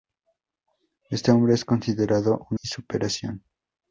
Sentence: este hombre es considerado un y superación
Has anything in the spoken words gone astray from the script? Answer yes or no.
no